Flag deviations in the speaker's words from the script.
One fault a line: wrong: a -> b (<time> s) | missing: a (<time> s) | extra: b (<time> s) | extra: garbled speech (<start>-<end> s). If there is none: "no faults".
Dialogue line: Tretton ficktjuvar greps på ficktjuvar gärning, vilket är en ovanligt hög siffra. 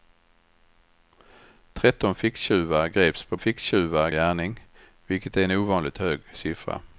no faults